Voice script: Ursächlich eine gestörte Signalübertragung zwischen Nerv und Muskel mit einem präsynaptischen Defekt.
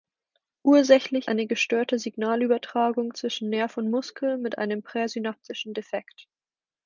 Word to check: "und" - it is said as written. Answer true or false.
true